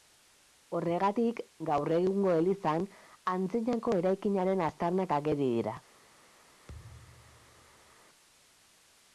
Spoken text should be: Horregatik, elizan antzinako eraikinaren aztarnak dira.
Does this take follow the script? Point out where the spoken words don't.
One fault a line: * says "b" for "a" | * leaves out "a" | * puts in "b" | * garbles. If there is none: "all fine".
* puts in "gaur egungo"
* puts in "ageri"